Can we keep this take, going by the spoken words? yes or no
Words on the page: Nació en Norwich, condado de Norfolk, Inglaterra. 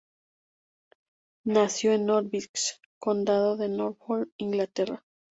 yes